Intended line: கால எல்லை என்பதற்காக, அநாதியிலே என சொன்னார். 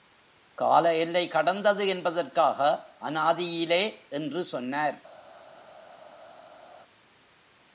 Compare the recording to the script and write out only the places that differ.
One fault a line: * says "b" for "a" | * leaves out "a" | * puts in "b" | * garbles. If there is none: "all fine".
* puts in "கடந்தது"
* says "என்று" for "என"